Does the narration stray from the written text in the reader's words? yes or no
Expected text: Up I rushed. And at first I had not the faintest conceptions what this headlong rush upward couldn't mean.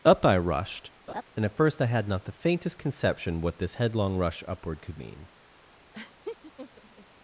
yes